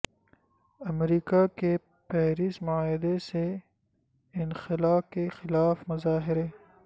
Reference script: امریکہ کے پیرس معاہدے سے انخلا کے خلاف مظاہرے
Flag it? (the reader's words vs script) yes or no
no